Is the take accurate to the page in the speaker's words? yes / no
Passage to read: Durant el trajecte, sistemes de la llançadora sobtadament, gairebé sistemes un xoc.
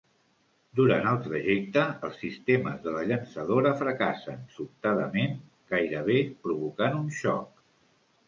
no